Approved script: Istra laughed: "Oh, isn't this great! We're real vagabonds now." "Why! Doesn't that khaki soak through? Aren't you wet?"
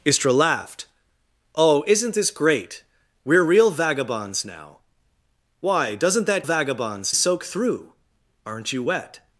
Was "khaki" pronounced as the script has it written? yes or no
no